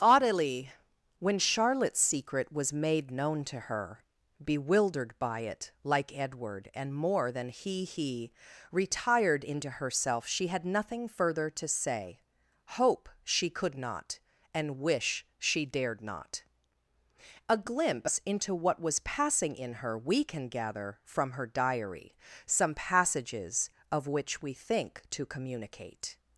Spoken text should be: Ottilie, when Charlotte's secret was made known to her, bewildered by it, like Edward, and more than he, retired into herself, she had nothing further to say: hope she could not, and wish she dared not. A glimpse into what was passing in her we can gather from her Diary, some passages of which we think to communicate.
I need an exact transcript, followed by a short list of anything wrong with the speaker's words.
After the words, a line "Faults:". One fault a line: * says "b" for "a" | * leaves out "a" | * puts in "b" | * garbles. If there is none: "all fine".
Ottilie, when Charlotte's secret was made known to her, bewildered by it, like Edward, and more than he he, retired into herself, she had nothing further to say: hope she could not, and wish she dared not. A glimpse into what was passing in her we can gather from her Diary, some passages of which we think to communicate.
Faults:
* puts in "he"